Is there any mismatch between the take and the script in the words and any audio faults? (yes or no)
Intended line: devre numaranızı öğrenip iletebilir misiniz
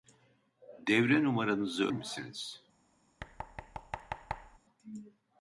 yes